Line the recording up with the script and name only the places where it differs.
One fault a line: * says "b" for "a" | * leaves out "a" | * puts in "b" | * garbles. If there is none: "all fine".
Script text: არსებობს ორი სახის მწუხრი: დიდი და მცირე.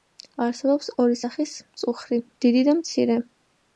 all fine